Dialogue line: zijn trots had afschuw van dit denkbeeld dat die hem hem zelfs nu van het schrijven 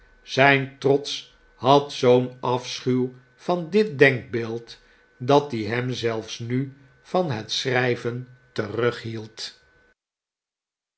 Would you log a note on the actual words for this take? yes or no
yes